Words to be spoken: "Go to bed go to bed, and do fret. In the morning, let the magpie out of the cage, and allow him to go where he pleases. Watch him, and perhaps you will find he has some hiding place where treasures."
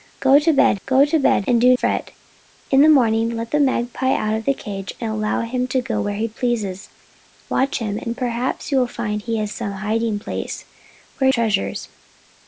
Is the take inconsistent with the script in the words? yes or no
no